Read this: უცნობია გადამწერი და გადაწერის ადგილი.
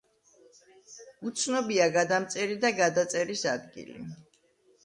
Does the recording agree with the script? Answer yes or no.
yes